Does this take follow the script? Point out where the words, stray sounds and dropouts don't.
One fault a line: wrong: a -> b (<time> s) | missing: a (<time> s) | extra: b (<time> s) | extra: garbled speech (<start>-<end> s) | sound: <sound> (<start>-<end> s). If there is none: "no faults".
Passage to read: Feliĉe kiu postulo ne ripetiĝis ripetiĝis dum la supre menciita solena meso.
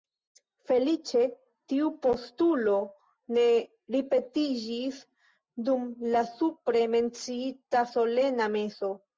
wrong: kiu -> tiu (1.7 s)
missing: ripetiĝis (5.0 s)